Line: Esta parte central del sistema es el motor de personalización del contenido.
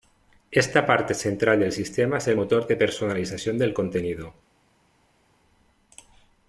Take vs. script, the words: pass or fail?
pass